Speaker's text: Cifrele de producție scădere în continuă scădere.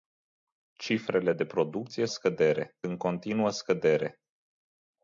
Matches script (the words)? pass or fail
pass